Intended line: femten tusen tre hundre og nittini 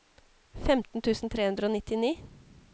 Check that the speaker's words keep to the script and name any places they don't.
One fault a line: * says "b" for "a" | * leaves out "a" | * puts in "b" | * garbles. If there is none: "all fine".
all fine